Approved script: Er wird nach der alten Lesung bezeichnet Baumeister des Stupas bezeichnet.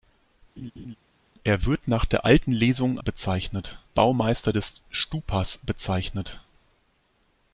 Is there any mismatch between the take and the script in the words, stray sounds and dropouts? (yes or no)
yes